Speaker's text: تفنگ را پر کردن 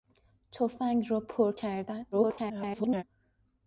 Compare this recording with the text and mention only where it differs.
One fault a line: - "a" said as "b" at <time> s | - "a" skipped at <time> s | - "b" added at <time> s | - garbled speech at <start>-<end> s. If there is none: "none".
- garbled speech at 2.1-3.0 s